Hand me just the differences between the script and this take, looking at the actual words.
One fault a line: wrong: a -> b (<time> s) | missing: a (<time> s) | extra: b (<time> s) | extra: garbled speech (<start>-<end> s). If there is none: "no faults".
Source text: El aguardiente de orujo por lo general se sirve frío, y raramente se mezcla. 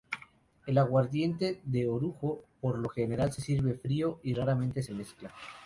no faults